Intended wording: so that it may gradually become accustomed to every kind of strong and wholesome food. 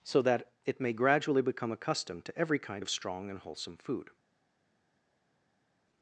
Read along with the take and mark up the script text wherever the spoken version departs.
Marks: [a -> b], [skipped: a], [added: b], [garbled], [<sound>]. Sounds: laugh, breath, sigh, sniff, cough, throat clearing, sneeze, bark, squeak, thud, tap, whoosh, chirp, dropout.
so that it may gradually become accustomed to every kind of strong and wholesome food.